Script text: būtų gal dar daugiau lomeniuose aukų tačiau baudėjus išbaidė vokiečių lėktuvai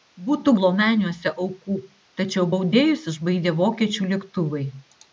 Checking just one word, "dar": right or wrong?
wrong